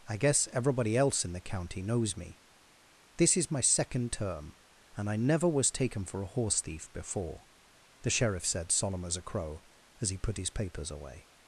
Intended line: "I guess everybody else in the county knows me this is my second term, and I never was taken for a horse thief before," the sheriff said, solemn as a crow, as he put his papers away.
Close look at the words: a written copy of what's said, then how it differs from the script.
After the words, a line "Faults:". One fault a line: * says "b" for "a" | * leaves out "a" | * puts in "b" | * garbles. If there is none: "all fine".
"I guess everybody else in the county knows me this is my second term, and I never was taken for a horse thief before," the sheriff said, solemn as a crow, as he put his papers away.
Faults:
all fine